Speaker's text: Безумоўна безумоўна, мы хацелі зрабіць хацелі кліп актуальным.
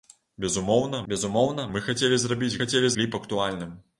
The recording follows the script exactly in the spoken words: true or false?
true